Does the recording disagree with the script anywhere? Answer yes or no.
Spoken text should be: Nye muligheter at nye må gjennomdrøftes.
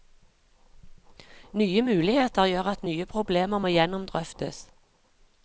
yes